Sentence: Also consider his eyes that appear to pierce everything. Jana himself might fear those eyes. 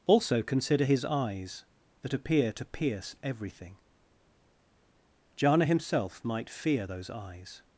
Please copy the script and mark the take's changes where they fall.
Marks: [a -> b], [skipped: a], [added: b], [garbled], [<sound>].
Also consider his eyes that appear to pierce everything. Jana himself might fear those eyes.